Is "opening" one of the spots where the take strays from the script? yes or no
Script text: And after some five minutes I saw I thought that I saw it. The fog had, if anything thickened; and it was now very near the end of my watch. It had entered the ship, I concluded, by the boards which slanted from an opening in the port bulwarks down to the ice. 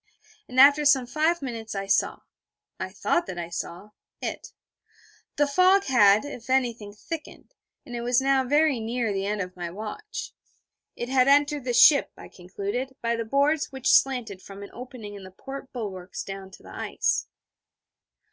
no